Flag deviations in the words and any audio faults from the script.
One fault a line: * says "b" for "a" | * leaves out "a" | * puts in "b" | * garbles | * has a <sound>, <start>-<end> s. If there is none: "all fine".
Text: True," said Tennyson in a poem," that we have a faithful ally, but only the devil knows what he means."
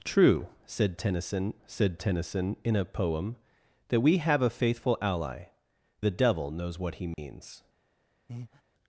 * puts in "said Tennyson"
* leaves out "but only"
* has a dropout, 7.1-7.2 s
* has a breath, 8.3-8.6 s